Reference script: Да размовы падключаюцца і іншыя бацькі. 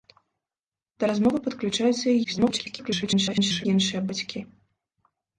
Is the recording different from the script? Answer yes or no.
yes